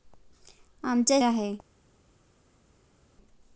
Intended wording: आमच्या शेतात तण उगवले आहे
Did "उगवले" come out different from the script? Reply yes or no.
yes